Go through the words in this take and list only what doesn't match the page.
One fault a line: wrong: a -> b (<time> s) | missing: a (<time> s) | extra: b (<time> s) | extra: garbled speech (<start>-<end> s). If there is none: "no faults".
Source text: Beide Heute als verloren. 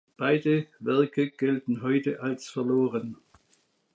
extra: Werke gelten (0.8 s)